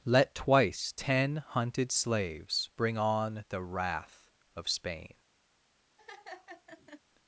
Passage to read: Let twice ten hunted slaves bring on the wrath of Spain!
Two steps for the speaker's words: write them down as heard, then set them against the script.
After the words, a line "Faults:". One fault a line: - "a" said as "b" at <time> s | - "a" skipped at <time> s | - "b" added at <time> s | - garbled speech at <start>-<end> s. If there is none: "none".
Let twice ten hunted slaves bring on the wrath of Spain!
Faults:
none